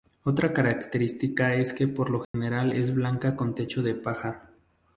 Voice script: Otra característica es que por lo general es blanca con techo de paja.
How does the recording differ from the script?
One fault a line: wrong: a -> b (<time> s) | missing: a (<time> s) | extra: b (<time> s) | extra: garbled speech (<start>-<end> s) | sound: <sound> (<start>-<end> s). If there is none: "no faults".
sound: dropout (2.2-2.3 s)